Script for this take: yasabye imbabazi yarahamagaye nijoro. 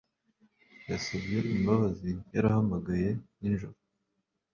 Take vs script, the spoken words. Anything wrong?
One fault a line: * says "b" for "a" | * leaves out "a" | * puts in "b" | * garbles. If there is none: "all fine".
all fine